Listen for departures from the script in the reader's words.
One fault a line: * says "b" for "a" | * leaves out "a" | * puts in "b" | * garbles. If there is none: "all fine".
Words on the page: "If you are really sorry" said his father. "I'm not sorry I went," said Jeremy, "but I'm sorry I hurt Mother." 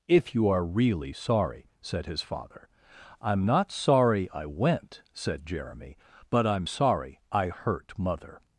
all fine